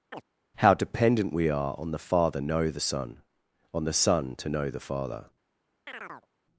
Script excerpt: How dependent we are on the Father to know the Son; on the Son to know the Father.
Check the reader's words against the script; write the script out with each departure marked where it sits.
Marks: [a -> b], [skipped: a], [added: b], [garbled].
How dependent we are on the Father [skipped: to] know the Son; on the Son to know the Father.